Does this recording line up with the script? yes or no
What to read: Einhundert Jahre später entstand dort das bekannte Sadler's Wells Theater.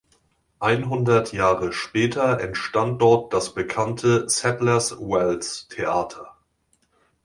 yes